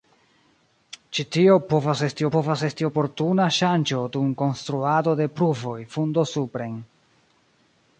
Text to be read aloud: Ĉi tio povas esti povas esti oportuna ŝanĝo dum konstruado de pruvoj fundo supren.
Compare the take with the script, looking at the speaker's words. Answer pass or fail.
pass